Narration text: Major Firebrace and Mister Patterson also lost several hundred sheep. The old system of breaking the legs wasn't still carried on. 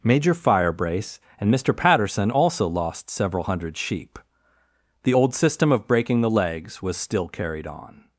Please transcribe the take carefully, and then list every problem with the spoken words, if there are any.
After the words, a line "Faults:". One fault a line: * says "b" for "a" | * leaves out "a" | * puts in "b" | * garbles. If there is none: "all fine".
Major Firebrace and Mister Patterson also lost several hundred sheep. The old system of breaking the legs was still carried on.
Faults:
* says "was" for "wasn't"